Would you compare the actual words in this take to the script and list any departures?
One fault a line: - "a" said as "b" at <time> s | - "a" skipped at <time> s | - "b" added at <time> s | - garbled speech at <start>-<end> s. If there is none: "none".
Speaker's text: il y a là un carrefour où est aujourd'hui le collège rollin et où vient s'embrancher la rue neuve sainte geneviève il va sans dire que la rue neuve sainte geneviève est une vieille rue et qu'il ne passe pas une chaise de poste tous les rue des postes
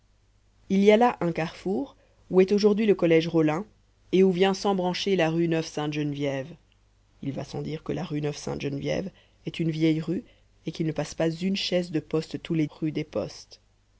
none